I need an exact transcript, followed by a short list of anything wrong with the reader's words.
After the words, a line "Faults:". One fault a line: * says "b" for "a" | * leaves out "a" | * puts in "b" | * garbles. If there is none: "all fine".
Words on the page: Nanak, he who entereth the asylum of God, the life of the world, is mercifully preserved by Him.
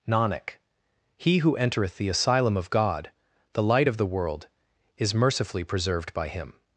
Nanak, he who entereth the asylum of God, the light of the world, is mercifully preserved by Him.
Faults:
* says "light" for "life"